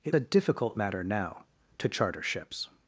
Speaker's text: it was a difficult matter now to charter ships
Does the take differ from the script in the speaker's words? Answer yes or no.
yes